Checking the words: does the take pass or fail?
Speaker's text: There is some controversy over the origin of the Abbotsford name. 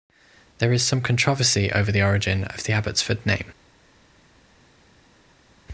pass